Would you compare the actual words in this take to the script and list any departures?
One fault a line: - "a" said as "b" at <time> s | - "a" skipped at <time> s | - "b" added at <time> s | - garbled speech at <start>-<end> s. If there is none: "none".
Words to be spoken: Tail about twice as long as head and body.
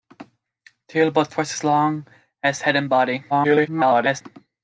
- garbled speech at 3.3-4.2 s